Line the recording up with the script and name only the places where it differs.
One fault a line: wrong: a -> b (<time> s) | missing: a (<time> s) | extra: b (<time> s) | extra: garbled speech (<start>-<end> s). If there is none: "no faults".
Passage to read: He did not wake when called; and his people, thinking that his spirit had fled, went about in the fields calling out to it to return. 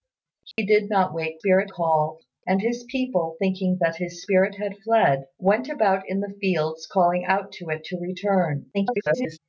wrong: when -> spirit (1.4 s)
extra: garbled speech (8.7-9.4 s)